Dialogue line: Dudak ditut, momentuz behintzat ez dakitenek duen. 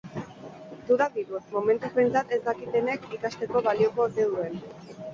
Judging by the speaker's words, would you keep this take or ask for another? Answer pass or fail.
fail